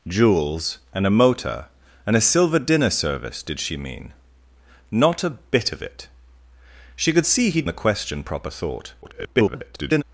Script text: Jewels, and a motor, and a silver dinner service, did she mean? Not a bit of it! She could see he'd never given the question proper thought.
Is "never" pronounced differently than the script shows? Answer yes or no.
yes